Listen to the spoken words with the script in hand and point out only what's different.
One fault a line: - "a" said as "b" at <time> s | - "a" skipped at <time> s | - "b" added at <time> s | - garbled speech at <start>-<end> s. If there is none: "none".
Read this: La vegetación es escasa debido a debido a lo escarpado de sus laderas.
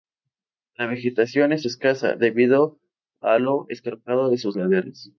- "debido a" skipped at 3.4 s